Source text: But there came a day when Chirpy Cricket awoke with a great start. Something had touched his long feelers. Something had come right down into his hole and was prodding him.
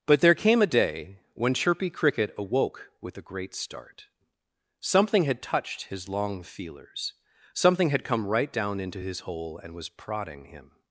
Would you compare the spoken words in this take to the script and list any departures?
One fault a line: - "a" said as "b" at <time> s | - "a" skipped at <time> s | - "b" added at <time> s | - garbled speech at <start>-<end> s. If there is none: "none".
none